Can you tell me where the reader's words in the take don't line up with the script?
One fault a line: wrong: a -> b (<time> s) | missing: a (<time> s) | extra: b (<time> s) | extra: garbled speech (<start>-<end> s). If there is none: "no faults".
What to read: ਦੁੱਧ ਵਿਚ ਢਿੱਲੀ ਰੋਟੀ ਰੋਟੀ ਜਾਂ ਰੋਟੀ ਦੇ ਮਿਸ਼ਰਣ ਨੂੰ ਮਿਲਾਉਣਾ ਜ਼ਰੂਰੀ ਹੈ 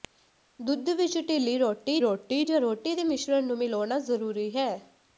no faults